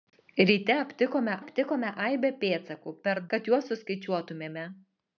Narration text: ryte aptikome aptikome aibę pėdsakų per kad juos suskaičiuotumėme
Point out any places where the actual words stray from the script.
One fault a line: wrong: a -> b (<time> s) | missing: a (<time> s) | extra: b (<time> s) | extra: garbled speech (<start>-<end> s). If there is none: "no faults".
no faults